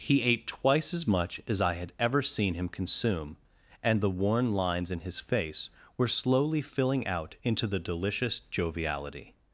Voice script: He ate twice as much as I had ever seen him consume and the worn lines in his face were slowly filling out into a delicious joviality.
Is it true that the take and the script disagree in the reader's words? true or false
true